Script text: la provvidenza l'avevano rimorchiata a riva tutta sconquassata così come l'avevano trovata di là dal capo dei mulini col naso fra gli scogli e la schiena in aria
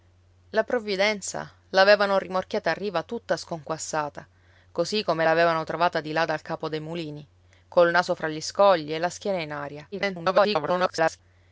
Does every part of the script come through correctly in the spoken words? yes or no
no